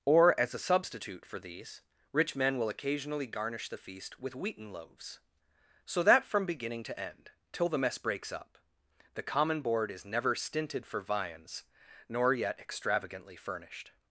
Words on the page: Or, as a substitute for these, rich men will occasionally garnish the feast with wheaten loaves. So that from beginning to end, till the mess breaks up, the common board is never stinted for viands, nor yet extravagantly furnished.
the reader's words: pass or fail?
pass